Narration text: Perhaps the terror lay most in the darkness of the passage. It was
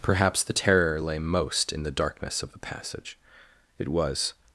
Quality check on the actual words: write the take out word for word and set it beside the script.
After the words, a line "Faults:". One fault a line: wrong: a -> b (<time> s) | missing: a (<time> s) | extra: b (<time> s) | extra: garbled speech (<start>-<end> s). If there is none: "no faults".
Perhaps the terror lay most in the darkness of the passage. It was
Faults:
no faults